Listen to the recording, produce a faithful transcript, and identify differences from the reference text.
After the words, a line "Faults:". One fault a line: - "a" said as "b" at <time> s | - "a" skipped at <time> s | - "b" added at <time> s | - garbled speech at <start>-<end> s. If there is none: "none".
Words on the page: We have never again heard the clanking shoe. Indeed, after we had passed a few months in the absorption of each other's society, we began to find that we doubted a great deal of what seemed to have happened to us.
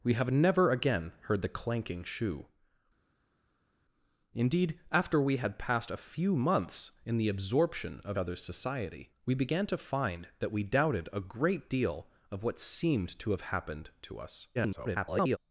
We have never again heard the clanking shoe. Indeed, after we had passed a few months in the absorption of other's society, we began to find that we doubted a great deal of what seemed to have happened to us. [garbled]
Faults:
- "each" skipped at 8.2 s
- garbled speech at 14.5-15.4 s